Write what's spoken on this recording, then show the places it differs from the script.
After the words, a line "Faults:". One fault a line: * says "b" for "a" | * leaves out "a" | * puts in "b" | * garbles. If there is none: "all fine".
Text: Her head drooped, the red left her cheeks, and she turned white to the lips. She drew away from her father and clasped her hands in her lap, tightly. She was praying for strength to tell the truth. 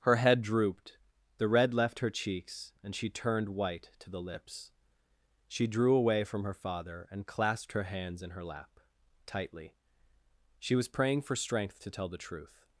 Her head drooped, the red left her cheeks, and she turned white to the lips. She drew away from her father and clasped her hands in her lap, tightly. She was praying for strength to tell the truth.
Faults:
all fine